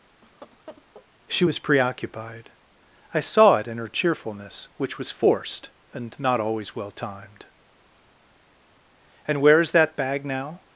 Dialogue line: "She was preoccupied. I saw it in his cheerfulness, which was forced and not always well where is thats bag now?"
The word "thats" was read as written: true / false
false